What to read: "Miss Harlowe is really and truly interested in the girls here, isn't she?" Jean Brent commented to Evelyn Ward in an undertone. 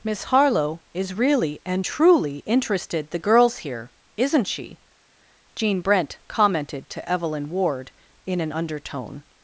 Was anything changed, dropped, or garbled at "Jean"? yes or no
no